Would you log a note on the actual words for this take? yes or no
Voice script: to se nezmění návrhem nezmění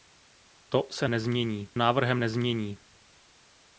no